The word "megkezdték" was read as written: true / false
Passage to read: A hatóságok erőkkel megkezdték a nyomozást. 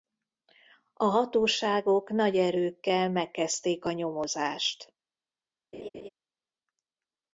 true